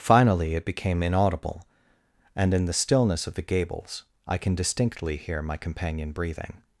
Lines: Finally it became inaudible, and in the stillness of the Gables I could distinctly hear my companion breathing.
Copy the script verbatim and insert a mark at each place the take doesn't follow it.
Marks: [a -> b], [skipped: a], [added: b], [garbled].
Finally it became inaudible, and in the stillness of the Gables I [could -> can] distinctly hear my companion breathing.